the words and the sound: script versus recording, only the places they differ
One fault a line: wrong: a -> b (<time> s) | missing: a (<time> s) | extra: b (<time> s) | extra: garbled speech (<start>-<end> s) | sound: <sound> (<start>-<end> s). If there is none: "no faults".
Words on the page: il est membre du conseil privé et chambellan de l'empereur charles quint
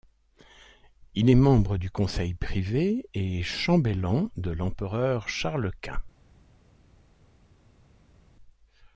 no faults